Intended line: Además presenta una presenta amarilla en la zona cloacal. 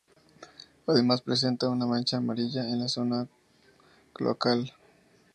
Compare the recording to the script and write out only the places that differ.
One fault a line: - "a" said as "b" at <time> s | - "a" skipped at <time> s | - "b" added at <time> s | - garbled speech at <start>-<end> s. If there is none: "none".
- "presenta" said as "mancha" at 1.9 s